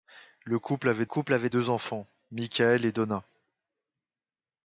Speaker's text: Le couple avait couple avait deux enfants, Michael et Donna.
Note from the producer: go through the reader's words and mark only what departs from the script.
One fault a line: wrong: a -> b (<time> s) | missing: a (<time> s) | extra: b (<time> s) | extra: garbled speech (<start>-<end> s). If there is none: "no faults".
no faults